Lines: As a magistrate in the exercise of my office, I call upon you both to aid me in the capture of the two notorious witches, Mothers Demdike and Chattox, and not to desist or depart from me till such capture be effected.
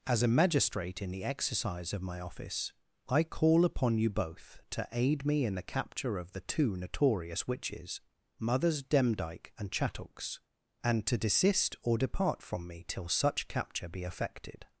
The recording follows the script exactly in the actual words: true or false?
false